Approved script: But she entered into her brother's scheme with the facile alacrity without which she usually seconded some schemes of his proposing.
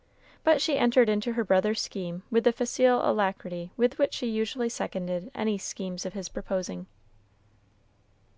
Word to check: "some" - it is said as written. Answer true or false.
false